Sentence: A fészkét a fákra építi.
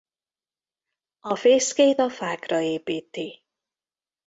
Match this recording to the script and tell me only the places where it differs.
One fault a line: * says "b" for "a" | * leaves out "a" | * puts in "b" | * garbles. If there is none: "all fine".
all fine